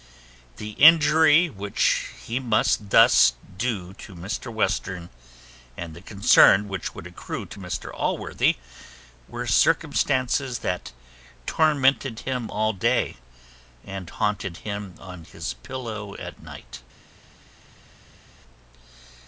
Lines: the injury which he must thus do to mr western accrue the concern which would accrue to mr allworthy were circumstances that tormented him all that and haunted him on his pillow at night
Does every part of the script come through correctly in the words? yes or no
no